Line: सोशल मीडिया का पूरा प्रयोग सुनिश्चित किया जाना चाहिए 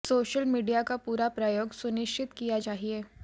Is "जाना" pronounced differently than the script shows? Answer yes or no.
yes